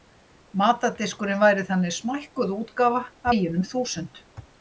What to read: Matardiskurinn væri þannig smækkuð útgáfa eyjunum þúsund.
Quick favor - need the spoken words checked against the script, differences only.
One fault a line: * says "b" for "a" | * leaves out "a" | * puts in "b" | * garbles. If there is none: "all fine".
all fine